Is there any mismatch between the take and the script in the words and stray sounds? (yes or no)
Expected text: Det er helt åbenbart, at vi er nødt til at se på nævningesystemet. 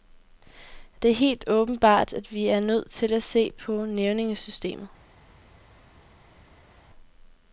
no